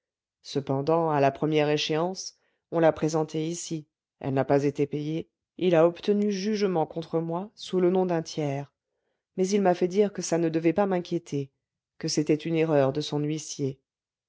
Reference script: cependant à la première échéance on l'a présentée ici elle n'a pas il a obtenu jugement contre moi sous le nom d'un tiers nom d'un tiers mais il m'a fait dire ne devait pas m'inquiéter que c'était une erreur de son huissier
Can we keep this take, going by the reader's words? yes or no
no